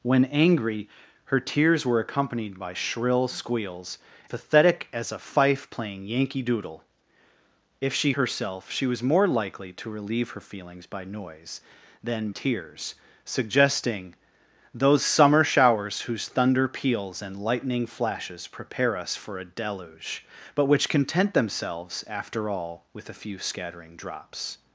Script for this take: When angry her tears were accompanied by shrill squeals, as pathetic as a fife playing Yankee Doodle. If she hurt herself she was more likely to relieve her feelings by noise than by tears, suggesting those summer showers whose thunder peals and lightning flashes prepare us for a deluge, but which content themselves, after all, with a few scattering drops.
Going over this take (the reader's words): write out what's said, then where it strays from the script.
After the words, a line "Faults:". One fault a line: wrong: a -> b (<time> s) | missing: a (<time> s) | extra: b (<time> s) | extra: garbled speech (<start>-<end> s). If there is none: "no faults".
When angry her tears were accompanied by shrill squeals, pathetic as a fife playing Yankee Doodle. If she herself she was more likely to relieve her feelings by noise than tears, suggesting those summer showers whose thunder peals and lightning flashes prepare us for a deluge, but which content themselves, after all, with a few scattering drops.
Faults:
missing: as (4.0 s)
missing: hurt (8.1 s)
missing: by (12.3 s)